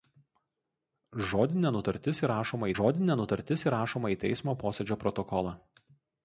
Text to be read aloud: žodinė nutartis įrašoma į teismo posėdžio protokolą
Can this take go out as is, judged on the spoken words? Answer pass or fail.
fail